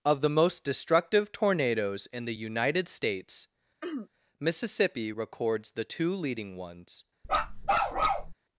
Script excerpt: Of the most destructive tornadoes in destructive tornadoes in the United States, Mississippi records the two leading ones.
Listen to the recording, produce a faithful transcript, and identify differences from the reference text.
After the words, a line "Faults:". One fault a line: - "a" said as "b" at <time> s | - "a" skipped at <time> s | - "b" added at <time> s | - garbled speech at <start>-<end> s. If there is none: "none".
Of the most destructive tornadoes in the United States, Mississippi records the two leading ones.
Faults:
- "destructive tornadoes in" skipped at 2.2 s